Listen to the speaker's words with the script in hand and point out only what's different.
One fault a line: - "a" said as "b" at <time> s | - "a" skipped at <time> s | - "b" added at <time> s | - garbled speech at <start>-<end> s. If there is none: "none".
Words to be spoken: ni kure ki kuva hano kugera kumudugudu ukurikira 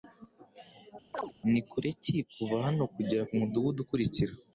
none